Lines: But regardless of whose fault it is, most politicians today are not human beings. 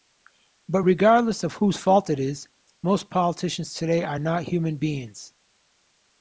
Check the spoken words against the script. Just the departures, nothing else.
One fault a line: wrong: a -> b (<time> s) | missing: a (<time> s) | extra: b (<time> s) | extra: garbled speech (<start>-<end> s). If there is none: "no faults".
no faults